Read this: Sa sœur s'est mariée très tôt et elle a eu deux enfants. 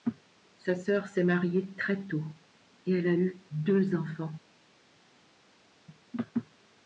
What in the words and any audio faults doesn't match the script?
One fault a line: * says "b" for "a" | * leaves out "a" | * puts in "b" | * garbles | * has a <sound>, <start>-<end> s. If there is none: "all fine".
all fine